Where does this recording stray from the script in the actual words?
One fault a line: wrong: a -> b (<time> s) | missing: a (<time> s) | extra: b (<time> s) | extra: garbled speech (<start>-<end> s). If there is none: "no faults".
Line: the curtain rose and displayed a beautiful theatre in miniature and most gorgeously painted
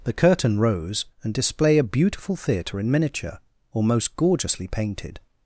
wrong: displayed -> display (1.3 s)
wrong: and -> or (3.7 s)